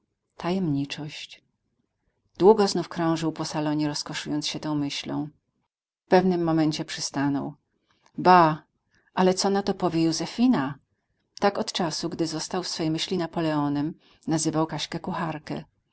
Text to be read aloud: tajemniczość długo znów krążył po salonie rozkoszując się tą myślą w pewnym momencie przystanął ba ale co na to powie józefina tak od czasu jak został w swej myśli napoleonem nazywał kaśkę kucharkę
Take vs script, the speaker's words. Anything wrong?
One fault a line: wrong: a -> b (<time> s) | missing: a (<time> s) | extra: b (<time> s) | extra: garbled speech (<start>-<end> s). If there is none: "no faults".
wrong: jak -> gdy (12.1 s)